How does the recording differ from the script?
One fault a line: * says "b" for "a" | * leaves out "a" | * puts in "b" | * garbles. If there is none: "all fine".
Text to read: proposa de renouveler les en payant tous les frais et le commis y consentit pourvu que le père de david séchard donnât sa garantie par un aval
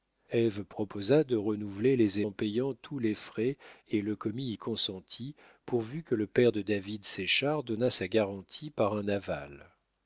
all fine